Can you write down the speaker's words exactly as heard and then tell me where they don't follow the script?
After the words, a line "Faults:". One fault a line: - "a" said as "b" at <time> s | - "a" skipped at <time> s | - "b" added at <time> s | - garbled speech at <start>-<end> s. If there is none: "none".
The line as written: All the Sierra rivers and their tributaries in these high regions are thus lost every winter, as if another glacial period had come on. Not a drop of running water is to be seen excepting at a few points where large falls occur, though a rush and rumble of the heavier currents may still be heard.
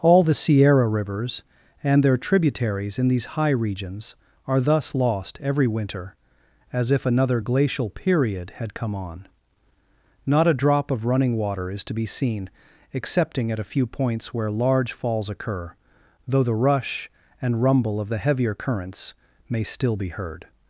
All the Sierra rivers and their tributaries in these high regions are thus lost every winter, as if another glacial period had come on. Not a drop of running water is to be seen excepting at a few points where large falls occur, though the rush and rumble of the heavier currents may still be heard.
Faults:
- "a" said as "the" at 16.4 s